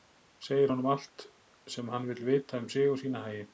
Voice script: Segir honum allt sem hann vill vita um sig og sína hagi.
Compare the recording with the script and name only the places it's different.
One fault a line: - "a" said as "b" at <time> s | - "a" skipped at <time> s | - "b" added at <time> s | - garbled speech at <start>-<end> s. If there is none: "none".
none